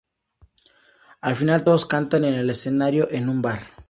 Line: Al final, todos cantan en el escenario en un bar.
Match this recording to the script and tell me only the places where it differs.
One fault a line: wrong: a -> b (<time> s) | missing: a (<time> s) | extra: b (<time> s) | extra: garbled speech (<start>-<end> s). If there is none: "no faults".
no faults